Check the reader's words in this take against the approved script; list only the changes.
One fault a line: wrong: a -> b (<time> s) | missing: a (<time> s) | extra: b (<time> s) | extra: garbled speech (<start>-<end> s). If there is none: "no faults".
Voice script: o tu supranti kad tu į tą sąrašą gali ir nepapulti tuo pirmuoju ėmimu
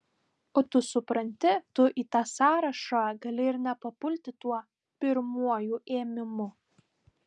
missing: kad (1.5 s)